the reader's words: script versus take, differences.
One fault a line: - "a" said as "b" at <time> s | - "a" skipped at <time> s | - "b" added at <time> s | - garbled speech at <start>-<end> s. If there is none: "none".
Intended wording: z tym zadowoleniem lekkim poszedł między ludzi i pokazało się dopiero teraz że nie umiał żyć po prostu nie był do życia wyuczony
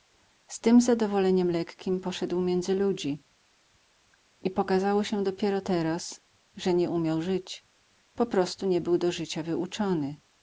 none